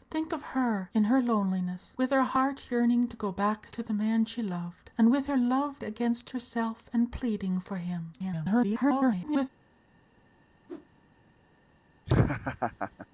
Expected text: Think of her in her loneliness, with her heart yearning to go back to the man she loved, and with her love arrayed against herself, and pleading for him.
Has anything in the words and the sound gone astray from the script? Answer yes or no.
yes